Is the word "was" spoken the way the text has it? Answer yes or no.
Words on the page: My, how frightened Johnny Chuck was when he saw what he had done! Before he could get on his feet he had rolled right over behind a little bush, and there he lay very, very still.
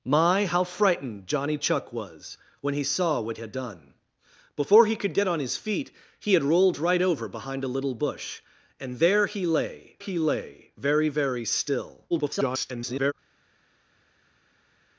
yes